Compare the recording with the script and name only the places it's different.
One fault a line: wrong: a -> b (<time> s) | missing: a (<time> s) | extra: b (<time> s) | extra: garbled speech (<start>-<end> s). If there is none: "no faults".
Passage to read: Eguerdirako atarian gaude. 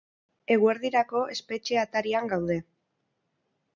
extra: espetxe (1.4 s)